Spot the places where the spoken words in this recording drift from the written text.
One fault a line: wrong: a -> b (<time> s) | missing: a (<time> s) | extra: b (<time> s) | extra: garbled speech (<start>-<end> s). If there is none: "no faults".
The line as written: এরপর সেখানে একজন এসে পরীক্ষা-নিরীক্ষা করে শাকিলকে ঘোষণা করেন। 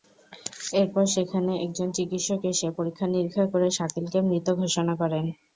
extra: চিকিৎসক (2.0 s)
extra: মৃত (4.3 s)